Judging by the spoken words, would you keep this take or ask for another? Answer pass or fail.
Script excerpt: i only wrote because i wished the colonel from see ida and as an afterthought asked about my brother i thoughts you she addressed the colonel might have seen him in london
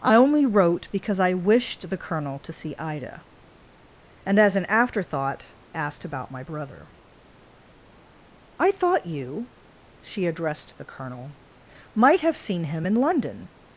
fail